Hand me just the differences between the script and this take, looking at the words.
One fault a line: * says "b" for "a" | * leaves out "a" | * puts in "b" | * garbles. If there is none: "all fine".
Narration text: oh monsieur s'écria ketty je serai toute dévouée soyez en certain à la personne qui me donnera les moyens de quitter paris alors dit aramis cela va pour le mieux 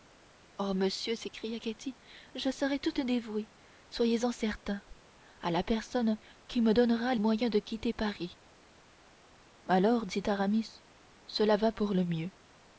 * leaves out "les"